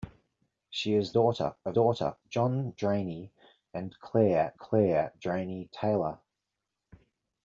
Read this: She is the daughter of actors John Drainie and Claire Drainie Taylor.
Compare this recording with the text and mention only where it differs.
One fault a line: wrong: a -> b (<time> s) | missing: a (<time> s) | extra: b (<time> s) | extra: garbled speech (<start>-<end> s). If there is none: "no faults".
missing: the (1.1 s)
wrong: actors -> daughter (1.7 s)
extra: Claire (4.6 s)